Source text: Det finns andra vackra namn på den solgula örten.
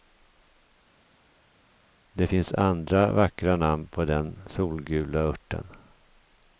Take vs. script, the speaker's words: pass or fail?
pass